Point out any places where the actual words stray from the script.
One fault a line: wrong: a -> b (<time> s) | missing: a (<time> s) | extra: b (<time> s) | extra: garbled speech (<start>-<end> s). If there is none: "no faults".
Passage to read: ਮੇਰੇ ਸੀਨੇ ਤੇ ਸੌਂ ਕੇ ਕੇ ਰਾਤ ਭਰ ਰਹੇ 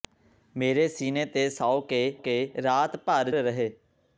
no faults